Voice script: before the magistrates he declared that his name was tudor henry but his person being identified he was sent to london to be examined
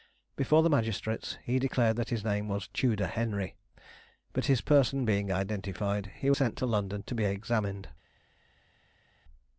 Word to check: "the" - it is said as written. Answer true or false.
true